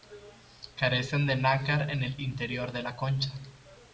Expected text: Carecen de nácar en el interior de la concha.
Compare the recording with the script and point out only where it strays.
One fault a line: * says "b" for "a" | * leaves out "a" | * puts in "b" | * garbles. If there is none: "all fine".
all fine